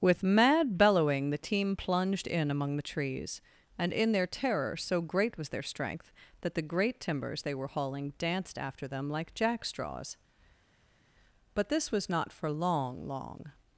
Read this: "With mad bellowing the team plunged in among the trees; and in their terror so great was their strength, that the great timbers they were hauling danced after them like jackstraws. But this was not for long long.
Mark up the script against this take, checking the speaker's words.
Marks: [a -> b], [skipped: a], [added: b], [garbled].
"With mad bellowing the team plunged in among the trees; and in their terror so great was their strength, that the great timbers they were hauling danced after them like jackstraws. But this was not for long long.